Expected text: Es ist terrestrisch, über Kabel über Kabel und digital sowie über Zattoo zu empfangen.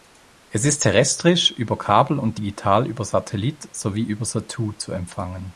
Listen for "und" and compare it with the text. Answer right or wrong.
wrong